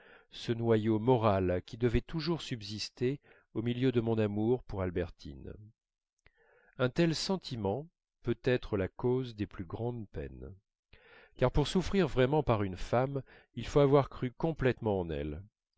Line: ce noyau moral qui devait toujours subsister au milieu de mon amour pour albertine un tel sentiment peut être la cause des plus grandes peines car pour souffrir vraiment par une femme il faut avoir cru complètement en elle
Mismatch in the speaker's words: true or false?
false